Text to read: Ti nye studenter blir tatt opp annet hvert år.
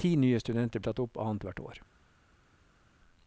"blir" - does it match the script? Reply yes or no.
no